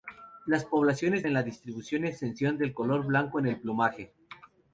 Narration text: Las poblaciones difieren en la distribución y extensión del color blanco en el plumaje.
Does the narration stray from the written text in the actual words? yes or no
yes